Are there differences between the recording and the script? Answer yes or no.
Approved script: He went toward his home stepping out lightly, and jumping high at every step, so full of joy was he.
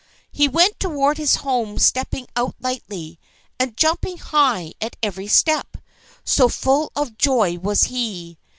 no